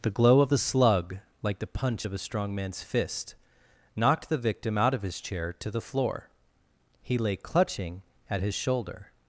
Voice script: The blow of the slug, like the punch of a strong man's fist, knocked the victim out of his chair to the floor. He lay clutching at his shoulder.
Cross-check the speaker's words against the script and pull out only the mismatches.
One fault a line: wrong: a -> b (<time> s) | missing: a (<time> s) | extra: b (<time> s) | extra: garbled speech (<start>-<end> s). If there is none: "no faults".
wrong: blow -> glow (0.1 s)